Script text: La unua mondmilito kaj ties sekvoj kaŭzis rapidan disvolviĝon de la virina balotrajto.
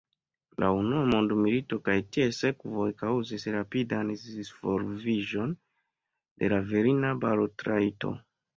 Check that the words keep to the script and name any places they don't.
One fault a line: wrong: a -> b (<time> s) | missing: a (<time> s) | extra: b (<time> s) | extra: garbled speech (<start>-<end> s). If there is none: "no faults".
no faults